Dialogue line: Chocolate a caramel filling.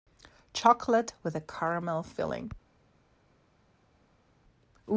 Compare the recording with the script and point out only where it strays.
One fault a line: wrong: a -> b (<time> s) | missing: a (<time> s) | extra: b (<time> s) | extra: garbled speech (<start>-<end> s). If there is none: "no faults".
extra: with (1.2 s)